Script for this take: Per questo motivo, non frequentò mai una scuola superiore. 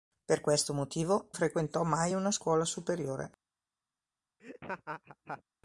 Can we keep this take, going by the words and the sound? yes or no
no